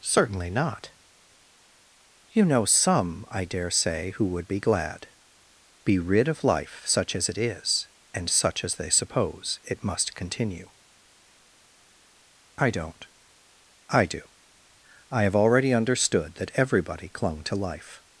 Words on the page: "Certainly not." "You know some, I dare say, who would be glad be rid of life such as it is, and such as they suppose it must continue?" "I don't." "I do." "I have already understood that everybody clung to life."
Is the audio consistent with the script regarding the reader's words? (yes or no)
yes